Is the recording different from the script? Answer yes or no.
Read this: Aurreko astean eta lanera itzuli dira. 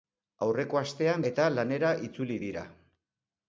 no